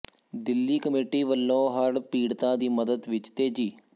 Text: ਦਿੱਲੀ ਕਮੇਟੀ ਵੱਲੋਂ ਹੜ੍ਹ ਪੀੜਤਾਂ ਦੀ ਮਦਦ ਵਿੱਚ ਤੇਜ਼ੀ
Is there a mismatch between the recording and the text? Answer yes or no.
no